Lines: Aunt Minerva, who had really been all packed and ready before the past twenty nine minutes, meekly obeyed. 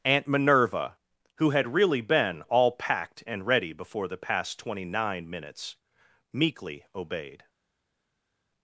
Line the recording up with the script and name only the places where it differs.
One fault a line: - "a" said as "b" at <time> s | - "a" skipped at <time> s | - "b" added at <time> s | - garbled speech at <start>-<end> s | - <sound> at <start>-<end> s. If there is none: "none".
none